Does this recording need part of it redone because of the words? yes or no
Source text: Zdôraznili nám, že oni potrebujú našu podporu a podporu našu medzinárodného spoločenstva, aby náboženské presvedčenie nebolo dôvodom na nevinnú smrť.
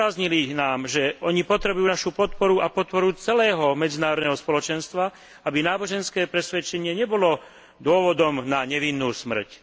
yes